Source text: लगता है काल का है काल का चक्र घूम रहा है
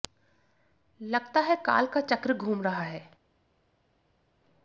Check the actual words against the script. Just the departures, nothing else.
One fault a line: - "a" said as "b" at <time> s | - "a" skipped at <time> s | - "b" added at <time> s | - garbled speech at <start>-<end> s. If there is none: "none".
- "है काल का" skipped at 2.0 s